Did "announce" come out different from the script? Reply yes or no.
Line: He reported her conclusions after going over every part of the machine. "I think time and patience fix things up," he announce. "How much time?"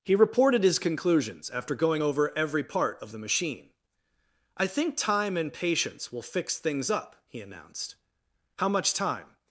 yes